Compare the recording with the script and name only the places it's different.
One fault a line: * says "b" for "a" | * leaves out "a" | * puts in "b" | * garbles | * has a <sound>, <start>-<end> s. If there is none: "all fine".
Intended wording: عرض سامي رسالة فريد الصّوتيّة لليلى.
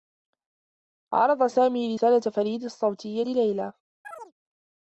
* has a chirp, 4.0-4.3 s